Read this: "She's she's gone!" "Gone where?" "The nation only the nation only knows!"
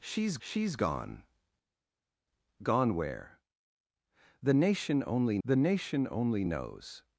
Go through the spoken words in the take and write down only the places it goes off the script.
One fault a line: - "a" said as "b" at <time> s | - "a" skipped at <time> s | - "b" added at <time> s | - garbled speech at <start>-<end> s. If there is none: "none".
none